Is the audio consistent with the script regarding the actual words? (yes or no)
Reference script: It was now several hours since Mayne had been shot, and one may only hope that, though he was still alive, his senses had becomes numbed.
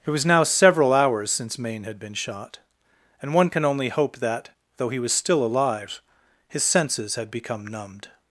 no